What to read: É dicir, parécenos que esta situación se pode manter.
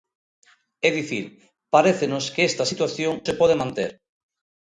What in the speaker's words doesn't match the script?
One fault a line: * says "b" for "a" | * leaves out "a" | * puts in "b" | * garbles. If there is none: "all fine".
all fine